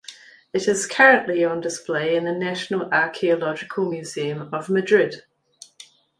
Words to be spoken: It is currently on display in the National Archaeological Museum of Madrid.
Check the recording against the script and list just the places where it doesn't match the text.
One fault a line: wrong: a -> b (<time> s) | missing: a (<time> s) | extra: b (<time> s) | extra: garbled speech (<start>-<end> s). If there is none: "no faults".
no faults